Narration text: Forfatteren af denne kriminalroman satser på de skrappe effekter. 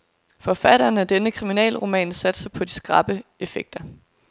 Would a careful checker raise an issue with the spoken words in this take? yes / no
yes